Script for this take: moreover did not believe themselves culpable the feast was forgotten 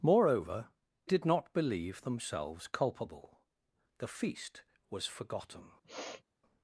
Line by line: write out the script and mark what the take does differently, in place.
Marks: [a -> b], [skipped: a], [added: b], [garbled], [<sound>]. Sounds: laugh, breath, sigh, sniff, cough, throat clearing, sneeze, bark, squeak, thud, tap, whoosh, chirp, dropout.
moreover did not believe themselves culpable the feast was forgotten [sniff]